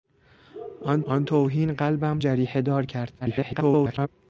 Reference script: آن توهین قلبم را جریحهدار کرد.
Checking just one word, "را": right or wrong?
wrong